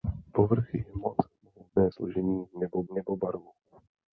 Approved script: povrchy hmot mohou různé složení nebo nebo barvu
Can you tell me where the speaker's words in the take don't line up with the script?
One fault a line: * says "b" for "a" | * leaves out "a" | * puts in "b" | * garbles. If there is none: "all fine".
all fine